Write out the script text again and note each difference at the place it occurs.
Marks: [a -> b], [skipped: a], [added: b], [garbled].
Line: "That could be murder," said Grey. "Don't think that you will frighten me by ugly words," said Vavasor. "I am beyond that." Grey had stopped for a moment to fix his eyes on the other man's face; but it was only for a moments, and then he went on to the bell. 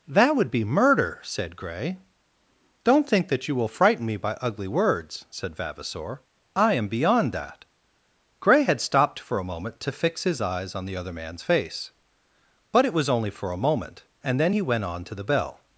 "That [could -> would] be murder," said Grey. "Don't think that you will frighten me by ugly words," said Vavasor. "I am beyond that." Grey had stopped for a moment to fix his eyes on the other man's face; but it was only for a [moments, -> moment] and then he went on to the bell.